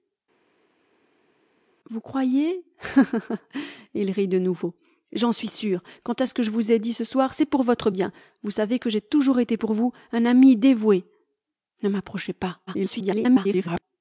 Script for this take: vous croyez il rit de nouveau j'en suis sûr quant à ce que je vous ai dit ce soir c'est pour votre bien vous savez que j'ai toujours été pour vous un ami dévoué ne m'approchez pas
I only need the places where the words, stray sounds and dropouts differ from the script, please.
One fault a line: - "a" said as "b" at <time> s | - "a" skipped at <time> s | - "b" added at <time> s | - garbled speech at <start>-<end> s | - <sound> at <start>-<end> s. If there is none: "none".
- garbled speech at 12.7-13.8 s